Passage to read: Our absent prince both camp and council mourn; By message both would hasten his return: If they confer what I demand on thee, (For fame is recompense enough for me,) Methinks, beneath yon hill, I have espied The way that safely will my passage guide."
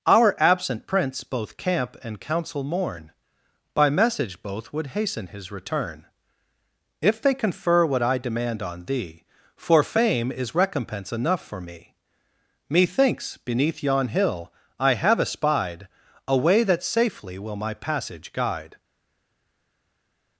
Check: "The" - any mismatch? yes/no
yes